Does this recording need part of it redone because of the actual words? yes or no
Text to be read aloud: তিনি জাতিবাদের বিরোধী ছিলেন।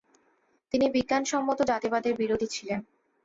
yes